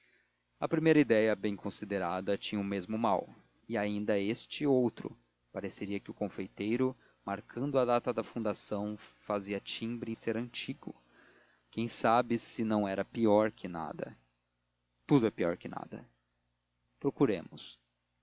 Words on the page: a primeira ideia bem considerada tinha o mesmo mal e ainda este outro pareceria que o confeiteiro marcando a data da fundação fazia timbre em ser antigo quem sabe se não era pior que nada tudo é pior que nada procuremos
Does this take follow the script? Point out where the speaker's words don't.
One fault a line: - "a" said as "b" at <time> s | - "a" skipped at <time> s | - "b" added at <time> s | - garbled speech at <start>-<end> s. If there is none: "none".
none